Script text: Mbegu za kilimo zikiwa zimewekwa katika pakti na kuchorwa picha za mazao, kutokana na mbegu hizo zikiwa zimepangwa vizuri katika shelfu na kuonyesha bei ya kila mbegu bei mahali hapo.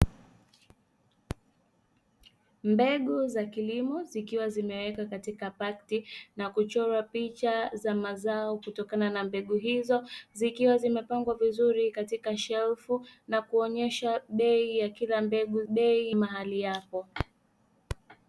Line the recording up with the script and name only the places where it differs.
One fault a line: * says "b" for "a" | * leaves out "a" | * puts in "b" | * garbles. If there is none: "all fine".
all fine